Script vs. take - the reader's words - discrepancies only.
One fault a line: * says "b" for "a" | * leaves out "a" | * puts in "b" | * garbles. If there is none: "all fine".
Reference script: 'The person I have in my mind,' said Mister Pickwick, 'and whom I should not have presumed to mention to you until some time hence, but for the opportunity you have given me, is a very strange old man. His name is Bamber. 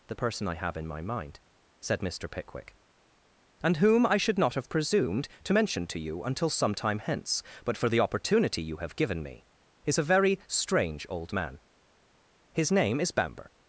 all fine